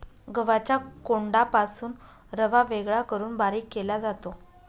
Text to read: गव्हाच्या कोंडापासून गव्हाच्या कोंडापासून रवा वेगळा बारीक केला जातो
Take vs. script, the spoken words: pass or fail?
fail